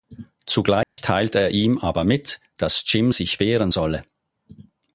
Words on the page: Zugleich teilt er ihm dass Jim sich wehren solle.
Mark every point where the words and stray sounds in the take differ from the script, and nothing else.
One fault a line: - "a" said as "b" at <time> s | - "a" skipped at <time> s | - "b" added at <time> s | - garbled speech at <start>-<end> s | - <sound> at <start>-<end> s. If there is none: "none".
- dropout at 0.8-1.0 s
- "aber mit" added at 1.8 s